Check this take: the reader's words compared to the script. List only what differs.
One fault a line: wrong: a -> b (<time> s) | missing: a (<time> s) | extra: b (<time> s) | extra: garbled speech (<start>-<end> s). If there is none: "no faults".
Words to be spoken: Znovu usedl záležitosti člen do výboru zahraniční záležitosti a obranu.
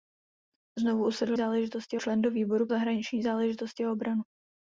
no faults